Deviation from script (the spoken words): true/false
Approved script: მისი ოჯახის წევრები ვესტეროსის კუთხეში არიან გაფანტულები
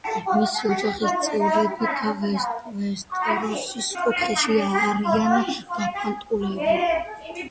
false